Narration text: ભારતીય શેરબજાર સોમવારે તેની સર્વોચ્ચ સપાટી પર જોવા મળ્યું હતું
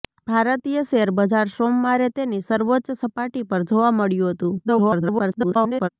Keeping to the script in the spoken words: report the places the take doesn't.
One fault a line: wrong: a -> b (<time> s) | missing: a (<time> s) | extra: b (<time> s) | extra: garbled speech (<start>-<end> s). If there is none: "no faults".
extra: garbled speech (4.6-5.9 s)